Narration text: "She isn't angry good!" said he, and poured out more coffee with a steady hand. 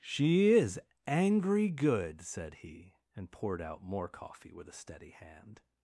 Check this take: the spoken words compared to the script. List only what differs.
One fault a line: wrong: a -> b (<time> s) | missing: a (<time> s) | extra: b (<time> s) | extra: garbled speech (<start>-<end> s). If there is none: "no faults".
wrong: isn't -> is (0.5 s)